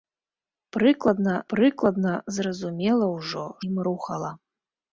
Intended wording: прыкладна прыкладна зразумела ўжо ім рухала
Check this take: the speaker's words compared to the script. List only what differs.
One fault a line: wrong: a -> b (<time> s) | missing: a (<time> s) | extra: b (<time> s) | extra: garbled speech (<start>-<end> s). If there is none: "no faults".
no faults